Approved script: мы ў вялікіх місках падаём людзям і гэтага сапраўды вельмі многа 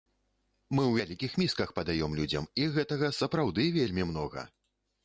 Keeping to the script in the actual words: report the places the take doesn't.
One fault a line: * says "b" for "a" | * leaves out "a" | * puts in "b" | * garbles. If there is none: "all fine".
all fine